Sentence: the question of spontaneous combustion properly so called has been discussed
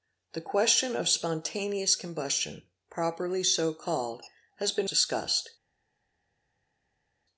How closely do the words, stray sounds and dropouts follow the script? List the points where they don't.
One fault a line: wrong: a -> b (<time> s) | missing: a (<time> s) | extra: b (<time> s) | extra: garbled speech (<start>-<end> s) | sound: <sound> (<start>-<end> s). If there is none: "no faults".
no faults